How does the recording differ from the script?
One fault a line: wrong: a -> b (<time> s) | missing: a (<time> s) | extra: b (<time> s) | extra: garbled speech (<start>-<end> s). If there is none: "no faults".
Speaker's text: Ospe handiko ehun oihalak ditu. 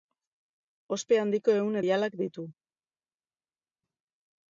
no faults